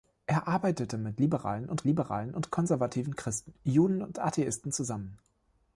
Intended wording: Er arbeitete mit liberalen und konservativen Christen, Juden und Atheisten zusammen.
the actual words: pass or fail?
fail